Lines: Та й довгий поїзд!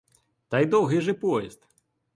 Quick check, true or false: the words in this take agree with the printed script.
false